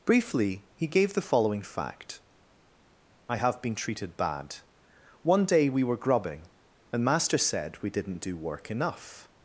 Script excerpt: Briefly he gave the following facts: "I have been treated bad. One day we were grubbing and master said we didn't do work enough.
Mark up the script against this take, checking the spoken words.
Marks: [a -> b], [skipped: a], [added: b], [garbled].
Briefly he gave the following [facts: -> fact] "I have been treated bad. One day we were grubbing and master said we didn't do work enough.